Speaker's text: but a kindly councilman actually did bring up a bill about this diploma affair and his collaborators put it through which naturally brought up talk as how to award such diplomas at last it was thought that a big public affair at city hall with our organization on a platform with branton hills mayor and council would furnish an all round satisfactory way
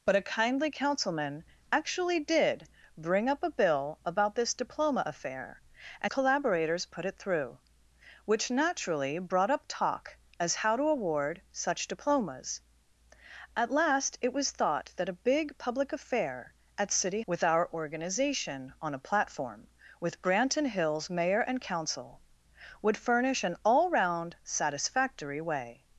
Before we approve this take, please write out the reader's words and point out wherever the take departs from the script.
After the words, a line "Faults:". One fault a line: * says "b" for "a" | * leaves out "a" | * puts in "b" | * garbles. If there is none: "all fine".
but a kindly councilman actually did bring up a bill about this diploma affair and collaborators put it through which naturally brought up talk as how to award such diplomas at last it was thought that a big public affair at city with our organization on a platform with branton hills mayor and council would furnish an all round satisfactory way
Faults:
* leaves out "his"
* leaves out "hall"